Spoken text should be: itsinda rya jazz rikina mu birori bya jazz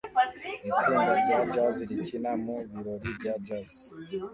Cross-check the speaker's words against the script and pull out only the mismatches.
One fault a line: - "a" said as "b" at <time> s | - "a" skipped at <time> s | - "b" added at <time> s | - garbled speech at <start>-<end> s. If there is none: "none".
none